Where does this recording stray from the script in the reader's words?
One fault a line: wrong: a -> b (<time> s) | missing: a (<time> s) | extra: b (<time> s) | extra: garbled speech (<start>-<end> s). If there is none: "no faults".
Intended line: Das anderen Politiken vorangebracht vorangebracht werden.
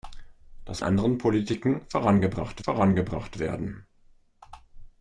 no faults